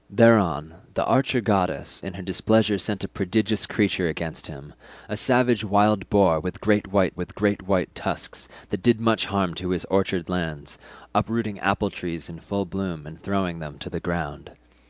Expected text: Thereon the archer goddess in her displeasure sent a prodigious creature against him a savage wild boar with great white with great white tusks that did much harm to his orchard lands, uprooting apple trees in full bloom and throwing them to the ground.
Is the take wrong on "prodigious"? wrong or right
right